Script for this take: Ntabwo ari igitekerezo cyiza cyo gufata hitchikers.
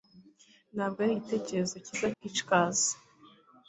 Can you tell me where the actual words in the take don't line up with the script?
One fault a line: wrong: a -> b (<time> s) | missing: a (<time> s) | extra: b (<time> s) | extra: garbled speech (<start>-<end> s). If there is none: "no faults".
missing: cyo gufata (2.1 s)